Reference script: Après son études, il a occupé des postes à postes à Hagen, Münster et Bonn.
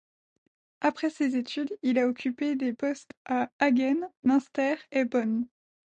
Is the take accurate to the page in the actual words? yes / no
no